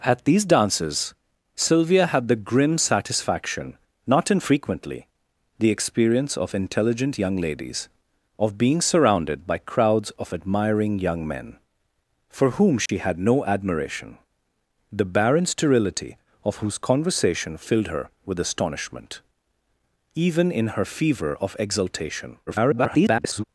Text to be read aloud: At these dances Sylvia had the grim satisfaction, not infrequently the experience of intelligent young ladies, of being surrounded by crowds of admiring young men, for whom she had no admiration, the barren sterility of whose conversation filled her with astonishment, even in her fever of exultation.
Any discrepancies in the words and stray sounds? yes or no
yes